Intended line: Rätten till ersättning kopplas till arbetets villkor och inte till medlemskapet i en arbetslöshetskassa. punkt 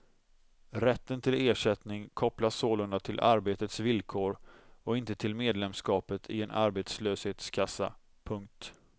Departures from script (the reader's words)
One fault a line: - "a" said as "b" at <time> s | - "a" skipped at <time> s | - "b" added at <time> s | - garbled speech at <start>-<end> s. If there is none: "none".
- "sålunda" added at 2.5 s